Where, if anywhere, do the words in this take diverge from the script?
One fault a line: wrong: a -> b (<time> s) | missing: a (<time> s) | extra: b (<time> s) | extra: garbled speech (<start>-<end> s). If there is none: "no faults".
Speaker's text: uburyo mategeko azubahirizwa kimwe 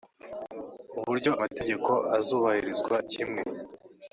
no faults